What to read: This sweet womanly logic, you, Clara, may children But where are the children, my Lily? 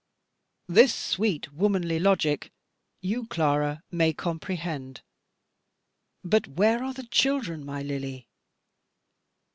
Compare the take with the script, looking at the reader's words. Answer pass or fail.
fail